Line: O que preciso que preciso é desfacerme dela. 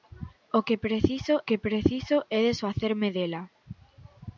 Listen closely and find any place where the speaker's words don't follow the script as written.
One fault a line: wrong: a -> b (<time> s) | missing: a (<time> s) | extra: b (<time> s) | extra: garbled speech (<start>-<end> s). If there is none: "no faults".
no faults